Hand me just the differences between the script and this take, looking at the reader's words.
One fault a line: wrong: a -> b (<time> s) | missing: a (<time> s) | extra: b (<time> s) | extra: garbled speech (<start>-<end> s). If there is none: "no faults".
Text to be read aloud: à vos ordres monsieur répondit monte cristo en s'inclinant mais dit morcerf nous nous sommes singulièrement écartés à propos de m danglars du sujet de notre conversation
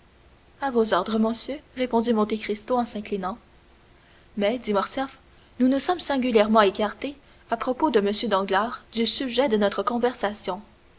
no faults